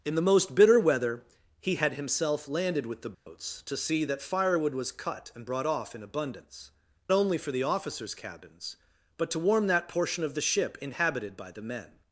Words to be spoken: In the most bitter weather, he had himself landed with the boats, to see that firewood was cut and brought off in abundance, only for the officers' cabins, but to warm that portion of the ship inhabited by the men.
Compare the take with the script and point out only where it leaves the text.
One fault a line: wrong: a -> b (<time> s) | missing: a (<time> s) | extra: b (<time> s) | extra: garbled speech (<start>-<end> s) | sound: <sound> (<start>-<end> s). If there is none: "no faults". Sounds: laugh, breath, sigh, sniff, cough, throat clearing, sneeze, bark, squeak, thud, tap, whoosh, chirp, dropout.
sound: dropout (3.1-3.3 s)